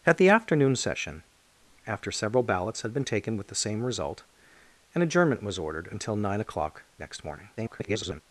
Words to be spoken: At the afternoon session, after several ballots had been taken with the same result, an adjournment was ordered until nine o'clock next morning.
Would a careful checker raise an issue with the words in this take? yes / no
yes